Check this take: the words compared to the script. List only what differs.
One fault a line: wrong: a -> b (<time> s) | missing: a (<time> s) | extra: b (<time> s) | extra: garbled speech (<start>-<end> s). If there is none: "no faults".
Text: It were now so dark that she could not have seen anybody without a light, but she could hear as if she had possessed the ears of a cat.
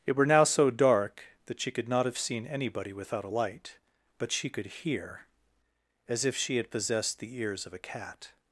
no faults